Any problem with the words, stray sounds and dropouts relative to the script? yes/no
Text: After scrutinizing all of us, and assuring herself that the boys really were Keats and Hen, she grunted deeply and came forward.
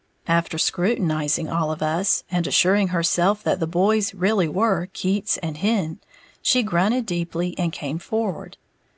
no